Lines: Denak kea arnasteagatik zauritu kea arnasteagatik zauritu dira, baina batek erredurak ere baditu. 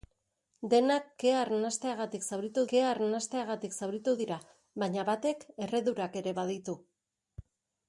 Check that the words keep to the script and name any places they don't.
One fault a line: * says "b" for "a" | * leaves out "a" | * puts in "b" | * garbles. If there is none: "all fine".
all fine